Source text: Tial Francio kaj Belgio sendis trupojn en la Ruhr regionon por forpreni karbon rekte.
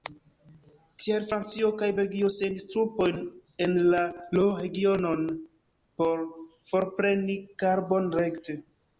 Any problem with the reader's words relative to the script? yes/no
no